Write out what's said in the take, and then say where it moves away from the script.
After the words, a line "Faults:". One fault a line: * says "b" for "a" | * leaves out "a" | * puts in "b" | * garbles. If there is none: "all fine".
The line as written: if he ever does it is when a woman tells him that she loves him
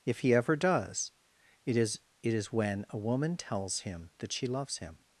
if he ever does it is it is when a woman tells him that she loves him
Faults:
* puts in "it is"